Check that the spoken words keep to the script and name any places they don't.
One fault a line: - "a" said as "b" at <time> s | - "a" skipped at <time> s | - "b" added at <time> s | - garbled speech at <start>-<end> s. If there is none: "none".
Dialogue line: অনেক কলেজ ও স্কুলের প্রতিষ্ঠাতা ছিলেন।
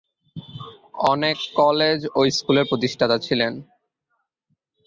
none